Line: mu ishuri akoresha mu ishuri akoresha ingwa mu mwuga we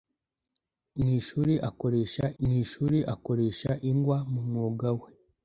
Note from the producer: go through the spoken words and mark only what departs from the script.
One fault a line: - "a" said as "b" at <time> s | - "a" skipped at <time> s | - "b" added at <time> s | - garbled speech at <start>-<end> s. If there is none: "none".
none